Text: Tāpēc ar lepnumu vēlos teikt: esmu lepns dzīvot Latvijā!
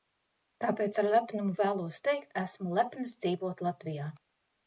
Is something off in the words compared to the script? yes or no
no